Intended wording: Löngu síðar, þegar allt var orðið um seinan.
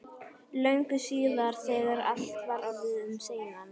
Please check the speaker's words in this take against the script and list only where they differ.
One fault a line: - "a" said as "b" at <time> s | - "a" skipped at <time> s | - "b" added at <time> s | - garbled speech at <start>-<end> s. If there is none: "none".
none